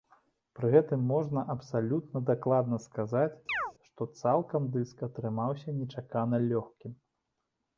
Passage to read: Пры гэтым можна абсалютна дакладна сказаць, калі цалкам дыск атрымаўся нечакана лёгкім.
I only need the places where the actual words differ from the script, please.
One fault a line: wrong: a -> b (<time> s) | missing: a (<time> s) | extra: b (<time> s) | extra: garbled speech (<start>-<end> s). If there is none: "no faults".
wrong: калі -> што (3.9 s)